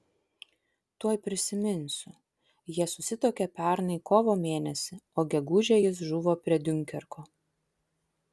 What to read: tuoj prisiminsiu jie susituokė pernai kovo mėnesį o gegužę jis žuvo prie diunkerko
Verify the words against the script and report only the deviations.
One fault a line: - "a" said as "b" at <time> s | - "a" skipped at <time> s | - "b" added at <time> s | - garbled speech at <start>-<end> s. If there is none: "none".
none